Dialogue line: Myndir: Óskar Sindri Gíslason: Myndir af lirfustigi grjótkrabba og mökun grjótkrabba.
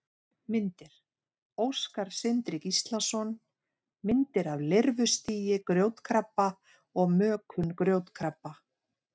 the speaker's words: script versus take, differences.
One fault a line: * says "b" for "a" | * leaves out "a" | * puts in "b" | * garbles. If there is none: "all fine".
all fine